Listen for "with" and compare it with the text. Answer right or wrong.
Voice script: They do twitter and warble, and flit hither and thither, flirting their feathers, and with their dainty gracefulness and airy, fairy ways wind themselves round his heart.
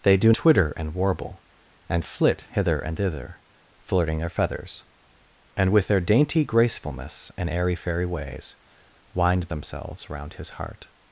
right